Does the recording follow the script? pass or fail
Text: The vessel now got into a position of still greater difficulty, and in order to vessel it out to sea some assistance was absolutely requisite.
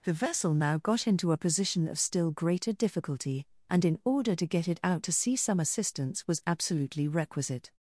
fail